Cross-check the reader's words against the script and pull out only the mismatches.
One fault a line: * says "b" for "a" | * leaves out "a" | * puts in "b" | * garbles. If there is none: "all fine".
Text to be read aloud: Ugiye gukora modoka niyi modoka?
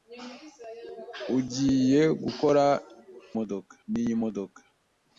all fine